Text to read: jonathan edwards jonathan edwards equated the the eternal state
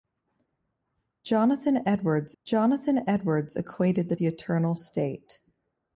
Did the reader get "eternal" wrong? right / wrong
right